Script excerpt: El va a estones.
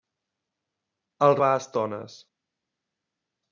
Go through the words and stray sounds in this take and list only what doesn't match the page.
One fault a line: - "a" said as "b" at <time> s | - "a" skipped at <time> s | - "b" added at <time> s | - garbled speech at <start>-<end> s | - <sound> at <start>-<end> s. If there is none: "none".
none